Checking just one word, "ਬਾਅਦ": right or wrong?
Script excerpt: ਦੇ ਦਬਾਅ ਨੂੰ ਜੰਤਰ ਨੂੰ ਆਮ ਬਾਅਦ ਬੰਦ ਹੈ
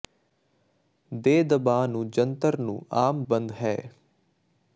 wrong